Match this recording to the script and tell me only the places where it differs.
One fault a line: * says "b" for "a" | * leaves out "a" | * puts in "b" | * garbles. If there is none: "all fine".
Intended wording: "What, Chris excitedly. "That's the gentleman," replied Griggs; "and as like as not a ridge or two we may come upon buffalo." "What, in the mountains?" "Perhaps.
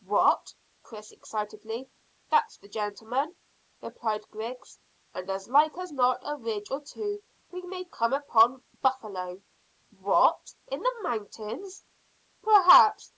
all fine